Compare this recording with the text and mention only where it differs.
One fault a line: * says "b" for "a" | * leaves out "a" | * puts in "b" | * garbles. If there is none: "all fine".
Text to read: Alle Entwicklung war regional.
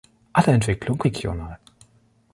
* leaves out "war"